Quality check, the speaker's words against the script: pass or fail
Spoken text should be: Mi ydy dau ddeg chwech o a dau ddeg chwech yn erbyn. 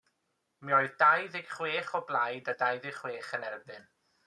fail